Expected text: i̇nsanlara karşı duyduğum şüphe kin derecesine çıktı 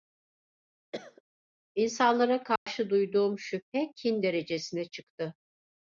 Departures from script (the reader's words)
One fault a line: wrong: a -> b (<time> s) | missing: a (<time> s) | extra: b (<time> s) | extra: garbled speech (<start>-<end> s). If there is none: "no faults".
no faults